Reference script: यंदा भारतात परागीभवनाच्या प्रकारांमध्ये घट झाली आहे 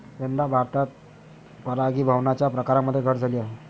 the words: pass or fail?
pass